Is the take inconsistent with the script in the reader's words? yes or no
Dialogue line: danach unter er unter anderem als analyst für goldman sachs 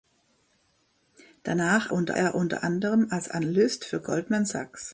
no